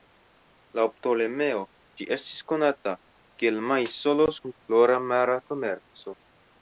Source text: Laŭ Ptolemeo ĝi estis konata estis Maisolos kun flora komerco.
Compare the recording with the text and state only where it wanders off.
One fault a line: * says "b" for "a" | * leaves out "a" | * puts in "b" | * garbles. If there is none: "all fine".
* says "kiel" for "estis"
* puts in "mara"